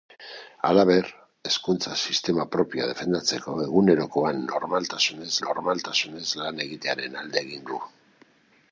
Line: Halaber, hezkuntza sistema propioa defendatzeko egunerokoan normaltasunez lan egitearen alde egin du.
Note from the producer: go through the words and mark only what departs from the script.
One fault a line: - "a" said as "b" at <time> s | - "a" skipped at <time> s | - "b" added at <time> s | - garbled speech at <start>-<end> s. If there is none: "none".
- "normaltasunez" added at 5.5 s